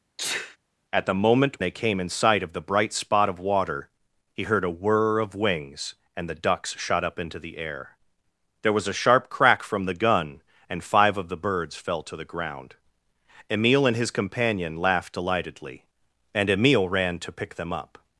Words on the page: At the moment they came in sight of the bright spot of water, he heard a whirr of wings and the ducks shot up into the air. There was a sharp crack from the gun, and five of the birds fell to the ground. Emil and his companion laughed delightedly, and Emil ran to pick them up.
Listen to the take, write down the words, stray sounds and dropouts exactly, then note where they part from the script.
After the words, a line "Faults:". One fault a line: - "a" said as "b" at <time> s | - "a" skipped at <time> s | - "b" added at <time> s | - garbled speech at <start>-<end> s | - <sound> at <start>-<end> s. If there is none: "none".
At the moment they came in sight of the bright spot of water, he heard a whirr of wings and the ducks shot up into the air. There was a sharp crack from the gun, and five of the birds fell to the ground. Emil and his companion laughed delightedly, and Emil ran to pick them up.
Faults:
- sneeze at 0.2-0.6 s